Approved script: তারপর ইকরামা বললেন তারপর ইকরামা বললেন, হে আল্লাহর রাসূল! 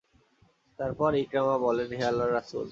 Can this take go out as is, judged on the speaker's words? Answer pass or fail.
fail